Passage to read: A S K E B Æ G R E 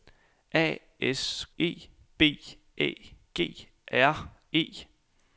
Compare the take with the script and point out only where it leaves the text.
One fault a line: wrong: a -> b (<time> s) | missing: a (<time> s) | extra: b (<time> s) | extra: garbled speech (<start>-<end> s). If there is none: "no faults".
missing: K (1.4 s)